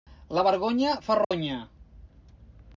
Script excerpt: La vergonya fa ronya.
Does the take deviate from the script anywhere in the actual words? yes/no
no